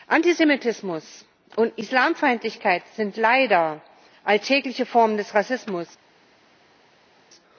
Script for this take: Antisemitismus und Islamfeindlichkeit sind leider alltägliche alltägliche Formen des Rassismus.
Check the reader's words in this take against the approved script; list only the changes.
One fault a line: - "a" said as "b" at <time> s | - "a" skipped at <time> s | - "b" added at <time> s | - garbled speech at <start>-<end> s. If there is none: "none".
- "alltägliche" skipped at 4.8 s